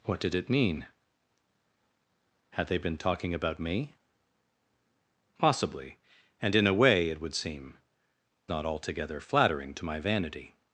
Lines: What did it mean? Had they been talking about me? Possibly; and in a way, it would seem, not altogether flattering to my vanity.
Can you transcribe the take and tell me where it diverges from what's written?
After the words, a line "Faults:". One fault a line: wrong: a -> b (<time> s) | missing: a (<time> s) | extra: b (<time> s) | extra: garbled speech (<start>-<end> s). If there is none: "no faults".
What did it mean? Had they been talking about me? Possibly; and in a way, it would seem, not altogether flattering to my vanity.
Faults:
no faults